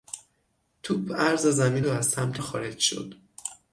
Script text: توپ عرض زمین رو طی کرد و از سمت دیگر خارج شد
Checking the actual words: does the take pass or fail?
fail